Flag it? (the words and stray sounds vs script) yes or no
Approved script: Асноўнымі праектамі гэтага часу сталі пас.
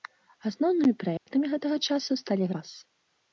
yes